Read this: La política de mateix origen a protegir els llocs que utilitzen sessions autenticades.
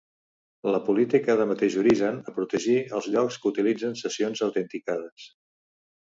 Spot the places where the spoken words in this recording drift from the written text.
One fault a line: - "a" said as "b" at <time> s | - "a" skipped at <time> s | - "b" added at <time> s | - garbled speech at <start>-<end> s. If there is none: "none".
none